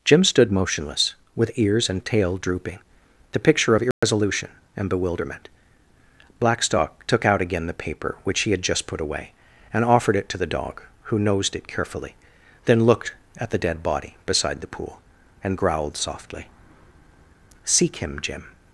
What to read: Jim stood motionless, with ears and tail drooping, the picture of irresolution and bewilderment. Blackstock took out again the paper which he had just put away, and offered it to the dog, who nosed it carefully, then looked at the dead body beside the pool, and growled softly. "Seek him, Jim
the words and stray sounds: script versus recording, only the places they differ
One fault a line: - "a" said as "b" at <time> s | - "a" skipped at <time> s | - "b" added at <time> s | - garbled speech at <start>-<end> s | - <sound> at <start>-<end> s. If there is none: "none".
- dropout at 3.9-4.0 s